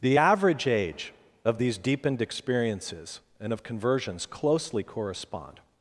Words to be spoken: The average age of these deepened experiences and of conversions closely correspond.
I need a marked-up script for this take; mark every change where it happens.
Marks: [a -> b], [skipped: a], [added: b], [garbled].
The average age of these deepened experiences and of conversions closely correspond.